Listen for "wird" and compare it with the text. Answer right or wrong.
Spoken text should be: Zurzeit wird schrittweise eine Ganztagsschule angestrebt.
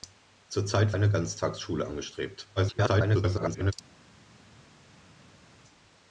wrong